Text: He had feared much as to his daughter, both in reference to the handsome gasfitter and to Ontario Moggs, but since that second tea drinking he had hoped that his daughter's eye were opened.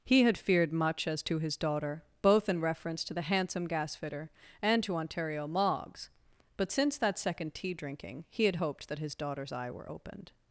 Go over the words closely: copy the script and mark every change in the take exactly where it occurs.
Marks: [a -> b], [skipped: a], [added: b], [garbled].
He had feared much as to his daughter, both in reference to the handsome gasfitter and to Ontario Moggs, but since that second tea drinking he had hoped that his daughter's eye were opened.